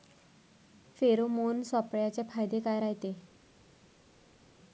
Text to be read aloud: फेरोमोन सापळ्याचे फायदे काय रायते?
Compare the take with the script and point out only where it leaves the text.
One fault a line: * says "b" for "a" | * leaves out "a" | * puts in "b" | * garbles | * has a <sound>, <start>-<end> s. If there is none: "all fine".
all fine